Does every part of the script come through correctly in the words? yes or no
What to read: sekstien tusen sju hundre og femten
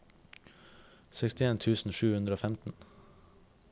yes